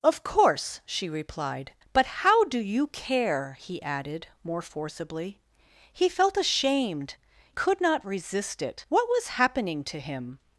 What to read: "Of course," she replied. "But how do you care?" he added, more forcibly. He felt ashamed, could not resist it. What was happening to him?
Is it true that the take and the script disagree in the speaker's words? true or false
false